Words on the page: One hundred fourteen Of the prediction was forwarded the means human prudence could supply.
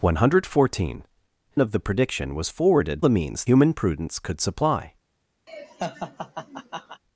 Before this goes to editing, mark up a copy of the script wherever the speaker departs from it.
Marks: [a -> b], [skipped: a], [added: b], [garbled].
One hundred fourteen Of the prediction was forwarded the means human prudence could supply.